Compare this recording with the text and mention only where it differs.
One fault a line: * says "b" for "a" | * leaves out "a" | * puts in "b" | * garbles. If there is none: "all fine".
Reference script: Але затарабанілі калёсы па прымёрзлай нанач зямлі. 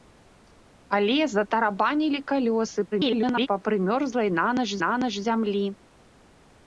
* garbles
* puts in "нанач"